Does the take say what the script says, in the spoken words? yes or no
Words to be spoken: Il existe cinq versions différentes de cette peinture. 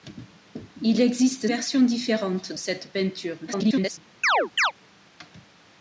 no